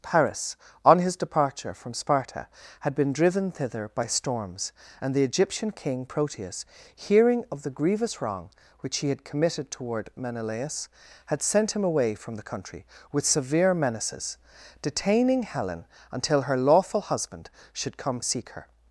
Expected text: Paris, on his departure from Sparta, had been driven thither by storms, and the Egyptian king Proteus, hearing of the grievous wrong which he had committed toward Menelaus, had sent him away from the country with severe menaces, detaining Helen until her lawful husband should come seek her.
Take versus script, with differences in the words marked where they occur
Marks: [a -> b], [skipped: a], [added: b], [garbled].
Paris, on his departure from Sparta, had been driven thither by storms, and the Egyptian king Proteus, hearing of the grievous wrong which he had committed toward Menelaus, had sent him away from the country with severe menaces, detaining Helen until her lawful husband should come seek her.